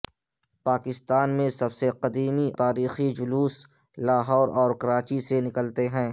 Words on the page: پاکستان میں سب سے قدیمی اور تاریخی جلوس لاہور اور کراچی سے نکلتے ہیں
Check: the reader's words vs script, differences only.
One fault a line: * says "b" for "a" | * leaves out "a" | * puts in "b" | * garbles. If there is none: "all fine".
* leaves out "اور"